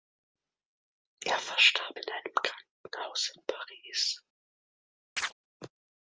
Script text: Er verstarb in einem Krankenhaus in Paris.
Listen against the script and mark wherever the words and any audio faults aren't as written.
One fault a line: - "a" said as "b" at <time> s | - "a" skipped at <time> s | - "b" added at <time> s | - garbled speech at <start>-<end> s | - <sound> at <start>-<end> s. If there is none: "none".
- chirp at 5.2-5.3 s